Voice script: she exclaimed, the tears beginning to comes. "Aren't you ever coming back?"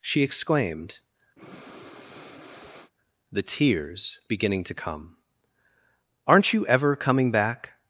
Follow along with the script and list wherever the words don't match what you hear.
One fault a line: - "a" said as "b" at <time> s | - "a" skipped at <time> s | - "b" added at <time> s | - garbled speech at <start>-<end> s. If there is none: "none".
- "comes" said as "come" at 4.7 s